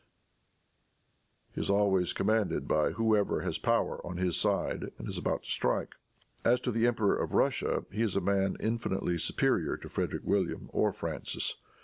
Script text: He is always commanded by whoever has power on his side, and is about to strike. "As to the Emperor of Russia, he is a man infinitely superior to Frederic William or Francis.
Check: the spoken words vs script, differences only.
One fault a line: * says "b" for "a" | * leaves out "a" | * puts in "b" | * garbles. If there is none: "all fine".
all fine